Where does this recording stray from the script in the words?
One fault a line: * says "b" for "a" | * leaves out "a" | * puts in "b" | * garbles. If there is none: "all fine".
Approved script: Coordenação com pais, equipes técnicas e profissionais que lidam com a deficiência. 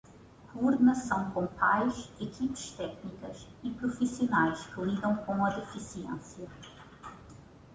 all fine